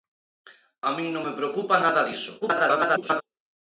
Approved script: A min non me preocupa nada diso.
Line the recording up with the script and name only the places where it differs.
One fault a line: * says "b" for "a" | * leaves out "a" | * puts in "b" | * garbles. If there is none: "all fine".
* garbles